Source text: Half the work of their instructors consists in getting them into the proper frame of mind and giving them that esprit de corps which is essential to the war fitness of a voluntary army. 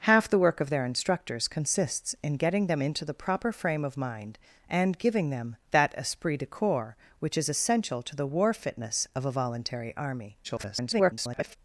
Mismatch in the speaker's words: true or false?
true